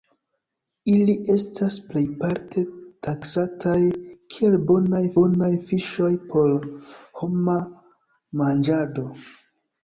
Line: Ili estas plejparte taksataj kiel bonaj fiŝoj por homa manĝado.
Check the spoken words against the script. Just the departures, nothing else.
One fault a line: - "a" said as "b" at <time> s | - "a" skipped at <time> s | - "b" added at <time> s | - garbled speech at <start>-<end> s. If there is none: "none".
- "bonaj" added at 5.2 s